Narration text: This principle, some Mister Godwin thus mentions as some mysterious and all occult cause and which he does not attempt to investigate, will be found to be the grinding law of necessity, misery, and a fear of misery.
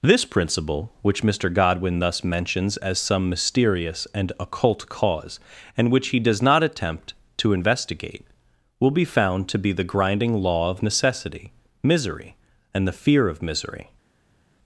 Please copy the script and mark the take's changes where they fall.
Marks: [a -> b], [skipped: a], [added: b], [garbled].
This principle, [some -> which] Mister Godwin thus mentions as some mysterious and [skipped: all] occult cause and which he does not attempt to investigate, will be found to be the grinding law of necessity, misery, and [a -> the] fear of misery.